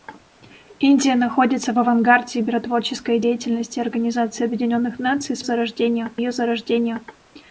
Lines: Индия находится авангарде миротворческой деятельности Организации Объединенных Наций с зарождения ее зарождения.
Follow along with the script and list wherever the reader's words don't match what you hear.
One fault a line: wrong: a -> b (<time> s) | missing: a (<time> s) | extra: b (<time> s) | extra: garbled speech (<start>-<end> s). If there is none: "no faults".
no faults